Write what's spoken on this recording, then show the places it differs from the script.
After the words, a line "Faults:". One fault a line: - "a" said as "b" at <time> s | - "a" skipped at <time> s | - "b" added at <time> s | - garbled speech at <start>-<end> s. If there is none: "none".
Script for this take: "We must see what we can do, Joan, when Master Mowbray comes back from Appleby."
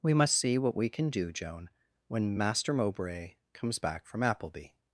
"We must see what we can do, Joan, when Master Mowbray comes back from Appleby."
Faults:
none